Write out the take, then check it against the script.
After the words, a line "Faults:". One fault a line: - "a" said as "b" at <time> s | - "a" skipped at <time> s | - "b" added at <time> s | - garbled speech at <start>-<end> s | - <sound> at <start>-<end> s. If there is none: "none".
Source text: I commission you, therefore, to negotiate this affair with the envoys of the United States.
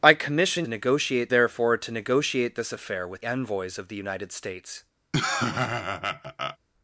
I commission negotiate, therefore, to negotiate this affair with envoys of the United States.
Faults:
- "you" said as "negotiate" at 0.7 s
- "the" skipped at 3.2 s
- laugh at 5.1-6.6 s